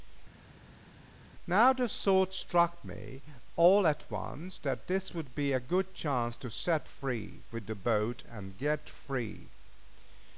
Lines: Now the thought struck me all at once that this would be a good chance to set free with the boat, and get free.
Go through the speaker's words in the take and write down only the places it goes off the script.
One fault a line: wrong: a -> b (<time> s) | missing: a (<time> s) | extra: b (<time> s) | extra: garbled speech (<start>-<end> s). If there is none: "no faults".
no faults